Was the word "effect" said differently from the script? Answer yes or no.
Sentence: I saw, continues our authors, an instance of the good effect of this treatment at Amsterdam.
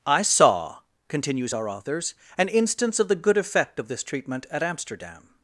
no